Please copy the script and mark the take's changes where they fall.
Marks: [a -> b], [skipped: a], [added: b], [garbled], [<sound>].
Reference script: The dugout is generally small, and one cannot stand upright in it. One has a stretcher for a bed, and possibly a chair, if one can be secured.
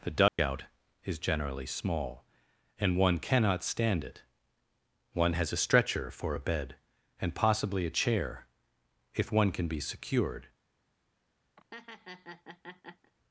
The dugout [dropout] is generally small, and one cannot stand [skipped: upright in] it. One has a stretcher for a bed, and possibly a chair, if one can be secured. [laugh]